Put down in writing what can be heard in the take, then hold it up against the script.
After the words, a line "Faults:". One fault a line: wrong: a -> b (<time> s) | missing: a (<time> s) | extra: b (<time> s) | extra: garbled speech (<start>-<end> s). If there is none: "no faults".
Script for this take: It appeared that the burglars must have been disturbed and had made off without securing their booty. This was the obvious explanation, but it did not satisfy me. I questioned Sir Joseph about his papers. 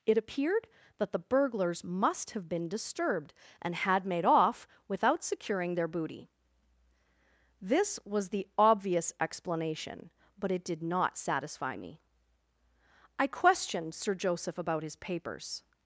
It appeared that the burglars must have been disturbed and had made off without securing their booty. This was the obvious explanation, but it did not satisfy me. I questioned Sir Joseph about his papers.
Faults:
no faults